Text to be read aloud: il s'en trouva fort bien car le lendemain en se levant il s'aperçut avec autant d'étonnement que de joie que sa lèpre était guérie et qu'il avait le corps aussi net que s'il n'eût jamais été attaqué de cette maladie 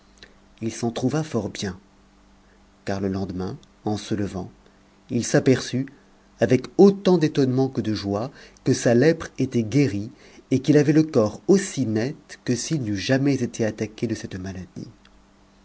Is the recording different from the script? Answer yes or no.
no